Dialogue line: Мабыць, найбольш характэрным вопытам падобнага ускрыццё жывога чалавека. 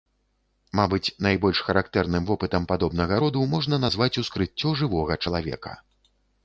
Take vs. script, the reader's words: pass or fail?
fail